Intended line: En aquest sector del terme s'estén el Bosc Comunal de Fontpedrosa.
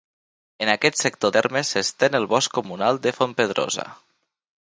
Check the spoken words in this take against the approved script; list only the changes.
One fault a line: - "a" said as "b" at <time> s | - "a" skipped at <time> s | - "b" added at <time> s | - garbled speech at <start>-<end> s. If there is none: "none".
- "del" skipped at 1.3 s